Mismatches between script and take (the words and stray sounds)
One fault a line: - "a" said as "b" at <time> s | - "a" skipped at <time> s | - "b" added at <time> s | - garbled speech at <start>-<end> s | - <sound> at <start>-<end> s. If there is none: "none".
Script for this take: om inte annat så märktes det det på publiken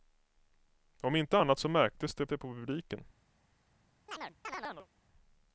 - chirp at 4.1-4.9 s